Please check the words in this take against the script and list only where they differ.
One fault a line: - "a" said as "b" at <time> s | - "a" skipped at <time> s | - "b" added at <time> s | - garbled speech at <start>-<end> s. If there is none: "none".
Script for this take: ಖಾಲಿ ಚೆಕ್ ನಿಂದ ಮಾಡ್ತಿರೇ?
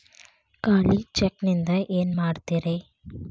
- "ಏನ" added at 1.9 s